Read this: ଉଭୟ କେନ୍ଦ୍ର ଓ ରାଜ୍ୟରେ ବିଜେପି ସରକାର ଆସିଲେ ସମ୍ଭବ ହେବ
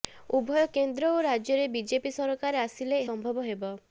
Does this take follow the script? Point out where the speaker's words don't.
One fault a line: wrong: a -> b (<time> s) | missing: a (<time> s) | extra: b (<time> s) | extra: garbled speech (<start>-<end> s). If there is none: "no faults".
no faults